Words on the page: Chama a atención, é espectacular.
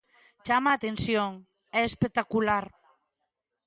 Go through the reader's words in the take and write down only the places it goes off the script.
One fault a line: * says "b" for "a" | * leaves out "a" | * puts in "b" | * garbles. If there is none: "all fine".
all fine